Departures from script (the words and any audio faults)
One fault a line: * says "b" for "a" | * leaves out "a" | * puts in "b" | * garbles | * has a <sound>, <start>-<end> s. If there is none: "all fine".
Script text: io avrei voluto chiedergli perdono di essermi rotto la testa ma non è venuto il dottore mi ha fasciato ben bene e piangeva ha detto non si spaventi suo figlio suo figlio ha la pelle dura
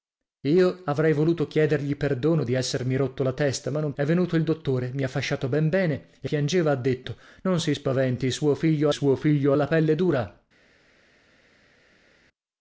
all fine